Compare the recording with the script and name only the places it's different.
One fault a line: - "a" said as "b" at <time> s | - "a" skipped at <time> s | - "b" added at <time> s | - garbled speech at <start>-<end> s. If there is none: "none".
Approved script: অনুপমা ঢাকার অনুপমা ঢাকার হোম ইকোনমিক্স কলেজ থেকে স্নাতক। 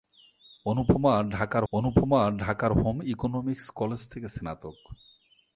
none